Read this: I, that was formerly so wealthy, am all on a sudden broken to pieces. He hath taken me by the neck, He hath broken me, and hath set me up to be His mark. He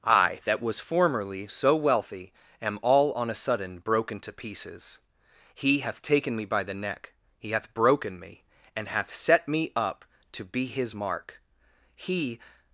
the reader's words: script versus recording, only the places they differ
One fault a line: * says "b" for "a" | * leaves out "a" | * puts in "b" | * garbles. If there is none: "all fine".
all fine